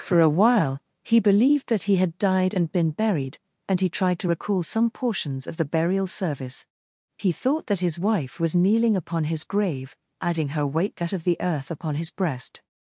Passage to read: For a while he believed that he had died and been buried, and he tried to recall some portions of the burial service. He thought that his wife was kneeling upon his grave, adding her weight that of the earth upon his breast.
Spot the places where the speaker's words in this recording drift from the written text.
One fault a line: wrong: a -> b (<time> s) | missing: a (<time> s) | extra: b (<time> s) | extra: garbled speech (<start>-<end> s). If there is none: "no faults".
no faults